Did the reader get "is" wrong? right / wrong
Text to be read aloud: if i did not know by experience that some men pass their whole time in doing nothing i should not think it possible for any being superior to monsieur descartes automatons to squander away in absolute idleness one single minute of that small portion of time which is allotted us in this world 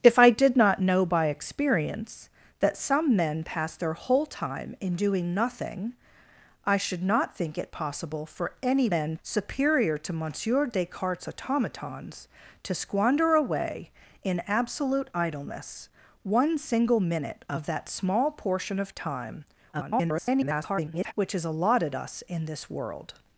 right